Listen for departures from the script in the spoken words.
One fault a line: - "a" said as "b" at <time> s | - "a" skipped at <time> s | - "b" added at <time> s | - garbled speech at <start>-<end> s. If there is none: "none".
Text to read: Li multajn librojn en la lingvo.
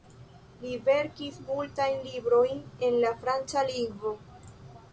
- "verkis" added at 0.9 s
- "franca" added at 3.2 s